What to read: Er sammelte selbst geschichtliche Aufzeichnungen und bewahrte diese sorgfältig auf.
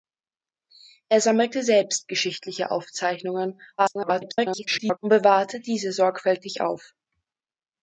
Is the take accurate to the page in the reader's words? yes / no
no